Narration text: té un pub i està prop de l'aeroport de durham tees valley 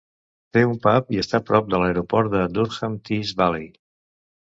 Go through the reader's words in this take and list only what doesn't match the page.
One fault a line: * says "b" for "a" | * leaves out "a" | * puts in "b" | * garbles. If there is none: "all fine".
all fine